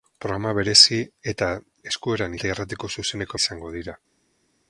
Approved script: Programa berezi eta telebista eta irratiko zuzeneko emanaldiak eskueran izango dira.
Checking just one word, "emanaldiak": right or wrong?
wrong